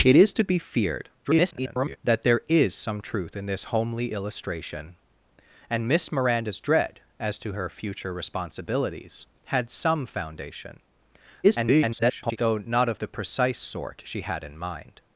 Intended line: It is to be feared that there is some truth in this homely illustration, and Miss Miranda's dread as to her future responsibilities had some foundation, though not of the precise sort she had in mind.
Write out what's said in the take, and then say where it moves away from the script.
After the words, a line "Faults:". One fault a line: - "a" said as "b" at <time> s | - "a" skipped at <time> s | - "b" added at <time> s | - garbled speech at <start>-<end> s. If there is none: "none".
It is to be feared [garbled] that there is some truth in this homely illustration, and Miss Miranda's dread as to her future responsibilities had some foundation, [garbled] though not of the precise sort she had in mind.
Faults:
- garbled speech at 1.2-2.0 s
- garbled speech at 11.4-12.4 s